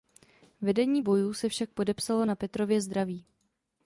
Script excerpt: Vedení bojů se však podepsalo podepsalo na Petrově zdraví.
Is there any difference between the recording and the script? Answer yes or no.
yes